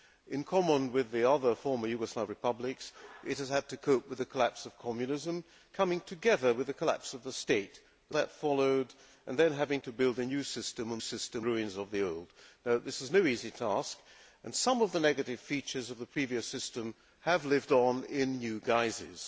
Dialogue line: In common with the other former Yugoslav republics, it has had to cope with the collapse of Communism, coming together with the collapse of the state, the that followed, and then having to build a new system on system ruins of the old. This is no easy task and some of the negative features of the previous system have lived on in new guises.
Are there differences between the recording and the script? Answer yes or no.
no